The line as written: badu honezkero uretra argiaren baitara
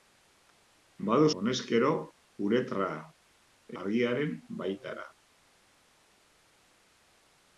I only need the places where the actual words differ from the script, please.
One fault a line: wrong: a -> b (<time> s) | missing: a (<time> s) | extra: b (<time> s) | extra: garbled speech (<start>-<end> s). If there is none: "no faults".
no faults